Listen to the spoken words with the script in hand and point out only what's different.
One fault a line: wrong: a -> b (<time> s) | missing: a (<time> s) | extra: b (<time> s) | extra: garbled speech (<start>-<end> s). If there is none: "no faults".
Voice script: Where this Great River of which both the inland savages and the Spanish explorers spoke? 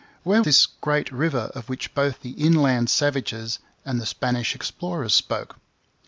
no faults